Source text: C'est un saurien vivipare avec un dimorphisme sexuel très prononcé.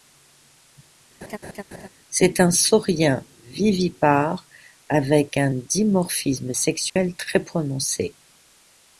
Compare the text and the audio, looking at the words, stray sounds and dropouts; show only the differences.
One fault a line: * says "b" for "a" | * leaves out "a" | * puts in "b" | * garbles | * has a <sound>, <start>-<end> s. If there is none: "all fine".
* has a laugh, 1.2-1.9 s
* has a dropout, 6.9-7.0 s